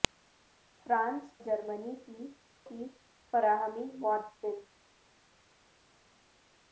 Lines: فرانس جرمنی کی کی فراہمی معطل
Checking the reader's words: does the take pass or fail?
pass